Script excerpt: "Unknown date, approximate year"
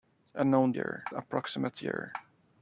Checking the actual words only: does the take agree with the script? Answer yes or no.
no